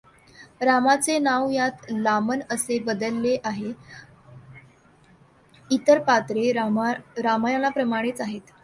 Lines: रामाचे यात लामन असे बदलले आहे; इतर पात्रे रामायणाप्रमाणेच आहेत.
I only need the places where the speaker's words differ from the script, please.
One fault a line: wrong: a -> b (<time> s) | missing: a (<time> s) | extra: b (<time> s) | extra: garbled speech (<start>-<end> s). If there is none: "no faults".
extra: नाव (1.2 s)